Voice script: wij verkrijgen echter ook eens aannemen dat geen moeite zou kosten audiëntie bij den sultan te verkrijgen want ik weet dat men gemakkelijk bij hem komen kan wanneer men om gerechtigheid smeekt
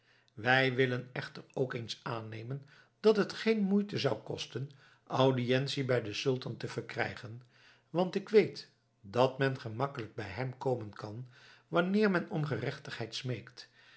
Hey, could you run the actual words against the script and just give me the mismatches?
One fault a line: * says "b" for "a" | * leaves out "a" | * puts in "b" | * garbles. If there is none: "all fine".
* says "willen" for "verkrijgen"
* puts in "het"